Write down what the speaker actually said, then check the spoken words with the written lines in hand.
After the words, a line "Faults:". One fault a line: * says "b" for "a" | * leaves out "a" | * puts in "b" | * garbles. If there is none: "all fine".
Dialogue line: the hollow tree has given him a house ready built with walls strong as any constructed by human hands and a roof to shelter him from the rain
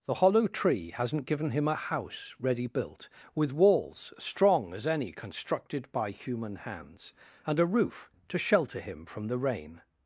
the hollow tree hasn't given him a house ready built with walls strong as any constructed by human hands and a roof to shelter him from the rain
Faults:
* says "hasn't" for "has"